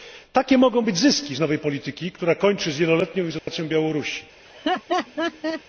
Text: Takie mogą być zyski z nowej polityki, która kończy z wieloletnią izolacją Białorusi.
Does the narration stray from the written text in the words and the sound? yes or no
yes